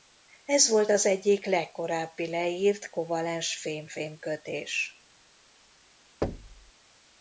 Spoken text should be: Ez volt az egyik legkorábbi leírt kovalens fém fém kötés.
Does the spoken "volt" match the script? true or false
true